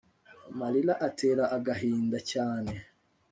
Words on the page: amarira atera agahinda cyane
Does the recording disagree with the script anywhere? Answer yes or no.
no